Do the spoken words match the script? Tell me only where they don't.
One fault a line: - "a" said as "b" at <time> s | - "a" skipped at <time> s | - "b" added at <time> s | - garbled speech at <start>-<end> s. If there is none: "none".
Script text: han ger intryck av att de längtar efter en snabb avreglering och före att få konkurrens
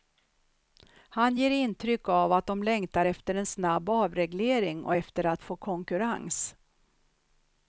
- "före" said as "efter" at 4.9 s